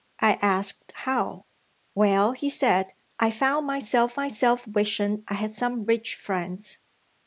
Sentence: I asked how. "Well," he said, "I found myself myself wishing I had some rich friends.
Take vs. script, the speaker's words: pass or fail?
pass